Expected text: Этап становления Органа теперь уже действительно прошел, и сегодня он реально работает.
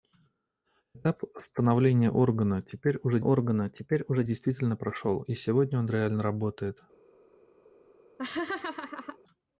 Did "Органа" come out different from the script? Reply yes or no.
no